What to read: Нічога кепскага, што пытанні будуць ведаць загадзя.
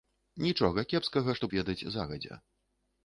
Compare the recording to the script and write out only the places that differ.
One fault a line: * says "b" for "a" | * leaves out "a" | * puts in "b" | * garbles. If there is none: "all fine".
* leaves out "пытанні будуць"